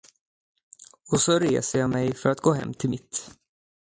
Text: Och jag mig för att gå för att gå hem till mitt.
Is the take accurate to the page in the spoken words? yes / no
no